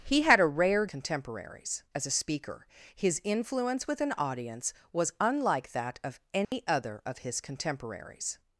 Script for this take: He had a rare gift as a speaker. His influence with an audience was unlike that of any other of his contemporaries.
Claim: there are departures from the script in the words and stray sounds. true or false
true